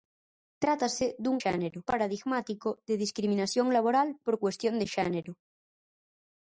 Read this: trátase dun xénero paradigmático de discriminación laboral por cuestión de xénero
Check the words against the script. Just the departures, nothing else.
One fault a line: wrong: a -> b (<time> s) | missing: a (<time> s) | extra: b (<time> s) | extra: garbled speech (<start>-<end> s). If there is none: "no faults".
no faults